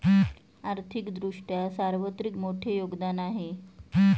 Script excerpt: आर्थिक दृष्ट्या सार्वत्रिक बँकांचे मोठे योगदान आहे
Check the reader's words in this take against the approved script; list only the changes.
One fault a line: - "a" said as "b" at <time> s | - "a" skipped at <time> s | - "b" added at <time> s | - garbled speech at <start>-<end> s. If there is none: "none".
- "बँकांचे" skipped at 2.4 s